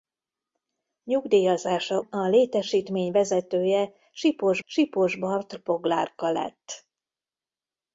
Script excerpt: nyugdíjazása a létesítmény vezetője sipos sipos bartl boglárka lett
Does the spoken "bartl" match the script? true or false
true